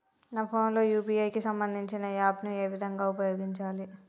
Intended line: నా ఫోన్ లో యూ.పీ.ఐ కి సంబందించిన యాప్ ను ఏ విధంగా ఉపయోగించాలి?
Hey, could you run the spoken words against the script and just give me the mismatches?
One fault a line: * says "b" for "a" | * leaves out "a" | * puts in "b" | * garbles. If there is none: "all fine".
all fine